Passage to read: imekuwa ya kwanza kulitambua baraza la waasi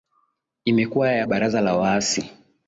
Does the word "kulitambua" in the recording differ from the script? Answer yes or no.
yes